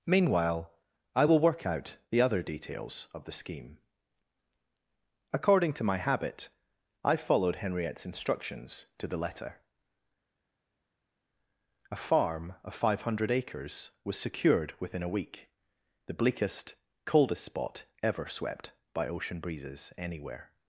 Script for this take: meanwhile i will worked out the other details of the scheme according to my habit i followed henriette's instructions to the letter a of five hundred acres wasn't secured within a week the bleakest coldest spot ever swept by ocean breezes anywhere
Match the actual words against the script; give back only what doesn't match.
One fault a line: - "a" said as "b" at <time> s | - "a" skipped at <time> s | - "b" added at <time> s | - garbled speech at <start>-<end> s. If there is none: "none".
- "worked" said as "work" at 1.4 s
- "farm" added at 11.9 s
- "wasn't" said as "was" at 14.0 s